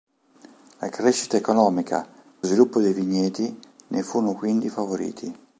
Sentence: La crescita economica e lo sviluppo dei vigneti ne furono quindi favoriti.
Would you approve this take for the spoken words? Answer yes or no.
no